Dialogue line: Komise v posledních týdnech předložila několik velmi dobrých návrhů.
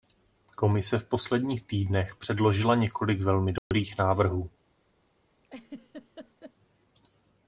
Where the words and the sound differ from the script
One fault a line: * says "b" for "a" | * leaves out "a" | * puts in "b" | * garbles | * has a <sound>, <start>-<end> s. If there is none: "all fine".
* has a dropout, 3.6-3.7 s
* has a laugh, 5.4-6.5 s